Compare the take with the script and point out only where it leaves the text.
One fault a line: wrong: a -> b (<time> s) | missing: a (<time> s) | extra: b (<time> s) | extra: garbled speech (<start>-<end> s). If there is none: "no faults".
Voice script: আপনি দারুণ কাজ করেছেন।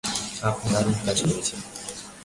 no faults